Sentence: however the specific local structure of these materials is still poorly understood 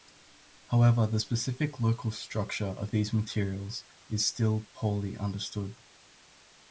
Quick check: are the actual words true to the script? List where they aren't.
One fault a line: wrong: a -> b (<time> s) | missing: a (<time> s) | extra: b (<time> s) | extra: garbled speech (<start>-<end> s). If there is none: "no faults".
no faults